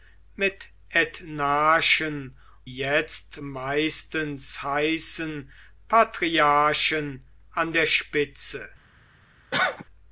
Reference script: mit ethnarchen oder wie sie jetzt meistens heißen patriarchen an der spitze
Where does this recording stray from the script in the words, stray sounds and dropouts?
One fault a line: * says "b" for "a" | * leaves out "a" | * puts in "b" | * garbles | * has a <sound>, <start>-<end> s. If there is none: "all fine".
* leaves out "oder wie sie"
* has a cough, 9.5-9.8 s